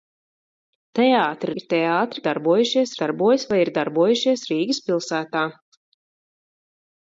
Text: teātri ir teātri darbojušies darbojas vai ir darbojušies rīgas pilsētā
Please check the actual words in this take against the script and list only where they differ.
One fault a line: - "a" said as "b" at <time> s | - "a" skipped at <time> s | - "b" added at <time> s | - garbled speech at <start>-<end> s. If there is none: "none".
none